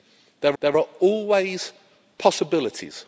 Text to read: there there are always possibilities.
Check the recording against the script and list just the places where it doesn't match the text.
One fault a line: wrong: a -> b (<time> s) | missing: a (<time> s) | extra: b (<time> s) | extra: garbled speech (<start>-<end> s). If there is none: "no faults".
no faults